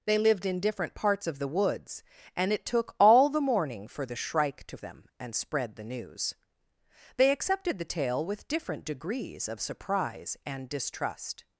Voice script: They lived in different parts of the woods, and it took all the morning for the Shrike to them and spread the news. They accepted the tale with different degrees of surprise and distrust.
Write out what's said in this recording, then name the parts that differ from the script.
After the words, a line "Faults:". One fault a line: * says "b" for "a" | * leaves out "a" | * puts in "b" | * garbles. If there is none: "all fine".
They lived in different parts of the woods, and it took all the morning for the Shrike to them and spread the news. They accepted the tale with different degrees of surprise and distrust.
Faults:
all fine